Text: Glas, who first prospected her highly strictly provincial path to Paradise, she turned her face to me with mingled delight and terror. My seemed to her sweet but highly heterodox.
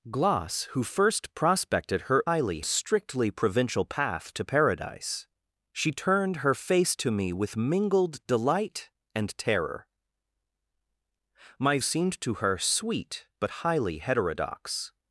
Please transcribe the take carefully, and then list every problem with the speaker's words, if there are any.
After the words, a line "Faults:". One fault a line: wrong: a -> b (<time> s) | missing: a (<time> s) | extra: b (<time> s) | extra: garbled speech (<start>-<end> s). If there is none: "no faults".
Glas, who first prospected her highly strictly provincial path to Paradise, she turned her face to me with mingled delight and terror. My seemed to her sweet but highly heterodox.
Faults:
no faults